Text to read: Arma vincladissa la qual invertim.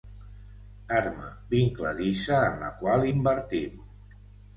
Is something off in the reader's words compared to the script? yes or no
yes